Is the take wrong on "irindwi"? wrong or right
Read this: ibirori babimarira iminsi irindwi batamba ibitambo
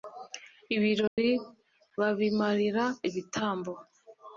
wrong